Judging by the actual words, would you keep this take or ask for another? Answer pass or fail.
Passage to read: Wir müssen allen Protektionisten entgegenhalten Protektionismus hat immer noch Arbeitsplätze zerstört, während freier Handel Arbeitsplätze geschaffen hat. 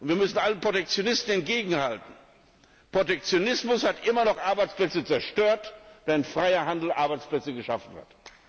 pass